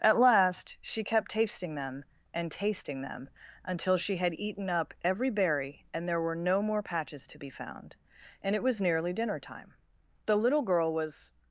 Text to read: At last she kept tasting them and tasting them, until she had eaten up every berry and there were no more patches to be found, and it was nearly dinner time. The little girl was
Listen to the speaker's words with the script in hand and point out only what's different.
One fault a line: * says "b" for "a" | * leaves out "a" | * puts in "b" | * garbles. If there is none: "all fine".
all fine